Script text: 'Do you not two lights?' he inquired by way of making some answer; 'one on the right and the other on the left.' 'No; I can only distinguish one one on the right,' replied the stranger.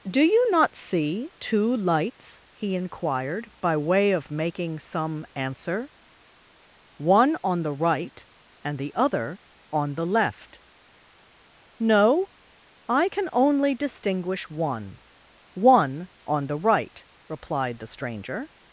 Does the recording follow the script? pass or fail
fail